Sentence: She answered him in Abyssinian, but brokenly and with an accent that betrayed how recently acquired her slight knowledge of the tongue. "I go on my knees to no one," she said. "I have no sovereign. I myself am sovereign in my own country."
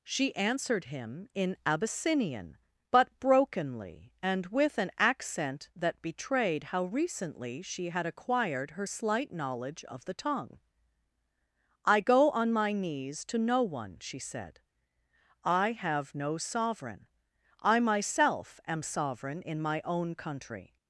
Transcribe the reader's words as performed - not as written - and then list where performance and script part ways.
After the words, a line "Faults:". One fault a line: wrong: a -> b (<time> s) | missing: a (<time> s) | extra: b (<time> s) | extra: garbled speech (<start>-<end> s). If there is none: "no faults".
She answered him in Abyssinian, but brokenly and with an accent that betrayed how recently she had acquired her slight knowledge of the tongue. "I go on my knees to no one," she said. "I have no sovereign. I myself am sovereign in my own country."
Faults:
extra: she had (7.6 s)